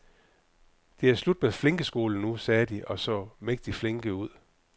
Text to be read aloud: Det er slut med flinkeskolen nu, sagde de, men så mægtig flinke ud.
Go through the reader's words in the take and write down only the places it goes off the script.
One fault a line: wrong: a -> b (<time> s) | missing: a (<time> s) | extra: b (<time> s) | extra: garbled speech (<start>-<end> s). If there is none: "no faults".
wrong: men -> og (2.9 s)